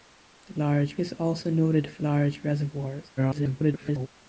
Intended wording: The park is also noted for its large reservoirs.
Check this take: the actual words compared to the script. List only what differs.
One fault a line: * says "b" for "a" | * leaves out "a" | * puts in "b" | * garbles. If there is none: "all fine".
* says "large" for "park"
* leaves out "its"
* garbles